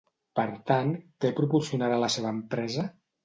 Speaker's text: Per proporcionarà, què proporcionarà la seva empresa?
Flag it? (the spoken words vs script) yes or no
yes